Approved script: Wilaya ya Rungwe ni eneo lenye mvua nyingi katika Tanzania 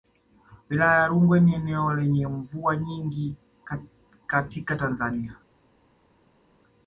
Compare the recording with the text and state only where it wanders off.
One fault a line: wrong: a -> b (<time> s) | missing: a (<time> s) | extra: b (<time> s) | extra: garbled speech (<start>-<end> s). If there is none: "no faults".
no faults